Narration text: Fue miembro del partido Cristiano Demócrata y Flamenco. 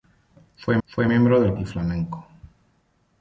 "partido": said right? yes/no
no